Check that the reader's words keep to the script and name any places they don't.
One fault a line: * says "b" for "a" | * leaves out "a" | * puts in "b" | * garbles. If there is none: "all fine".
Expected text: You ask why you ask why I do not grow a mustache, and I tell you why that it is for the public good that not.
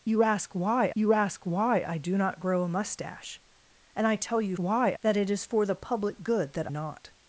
all fine